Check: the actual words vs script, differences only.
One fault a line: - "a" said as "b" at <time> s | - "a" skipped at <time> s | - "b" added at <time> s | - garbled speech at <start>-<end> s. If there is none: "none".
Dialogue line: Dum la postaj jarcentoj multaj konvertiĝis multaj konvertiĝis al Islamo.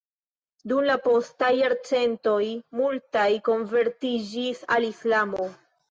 - "multaj konvertiĝis" skipped at 4.6 s